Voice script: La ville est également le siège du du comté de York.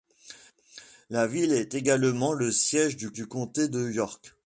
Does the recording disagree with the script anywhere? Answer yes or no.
no